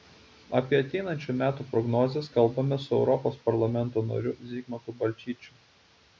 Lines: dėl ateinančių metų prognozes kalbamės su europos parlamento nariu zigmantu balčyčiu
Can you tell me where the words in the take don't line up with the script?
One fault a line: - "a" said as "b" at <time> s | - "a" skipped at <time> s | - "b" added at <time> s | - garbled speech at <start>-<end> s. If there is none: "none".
- "dėl" said as "apie" at 0.6 s